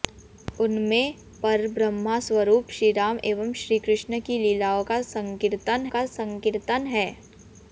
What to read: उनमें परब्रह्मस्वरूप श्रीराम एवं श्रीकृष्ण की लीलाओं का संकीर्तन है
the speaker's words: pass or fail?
fail